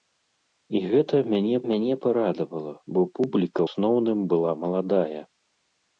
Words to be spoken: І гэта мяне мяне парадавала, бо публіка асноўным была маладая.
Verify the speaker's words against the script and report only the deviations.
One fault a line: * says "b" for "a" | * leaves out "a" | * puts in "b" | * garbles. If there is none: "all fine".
all fine